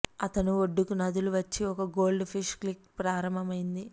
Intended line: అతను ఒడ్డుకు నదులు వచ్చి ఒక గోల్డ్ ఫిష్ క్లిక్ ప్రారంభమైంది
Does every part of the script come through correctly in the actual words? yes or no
yes